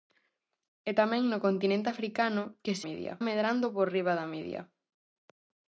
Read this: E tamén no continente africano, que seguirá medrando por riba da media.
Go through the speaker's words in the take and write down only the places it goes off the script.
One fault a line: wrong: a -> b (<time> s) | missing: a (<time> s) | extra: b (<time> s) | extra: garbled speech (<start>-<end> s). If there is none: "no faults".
wrong: seguirá -> media (2.9 s)